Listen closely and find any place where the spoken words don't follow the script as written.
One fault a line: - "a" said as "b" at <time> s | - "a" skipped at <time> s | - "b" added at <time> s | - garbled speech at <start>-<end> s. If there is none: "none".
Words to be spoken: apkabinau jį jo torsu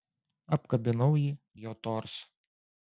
none